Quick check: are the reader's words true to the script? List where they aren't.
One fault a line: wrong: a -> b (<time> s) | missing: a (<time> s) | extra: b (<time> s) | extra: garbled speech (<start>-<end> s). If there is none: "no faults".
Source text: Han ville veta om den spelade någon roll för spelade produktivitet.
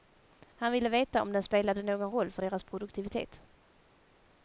wrong: spelade -> deras (2.4 s)